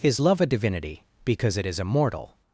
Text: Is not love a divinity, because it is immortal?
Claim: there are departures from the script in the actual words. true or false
true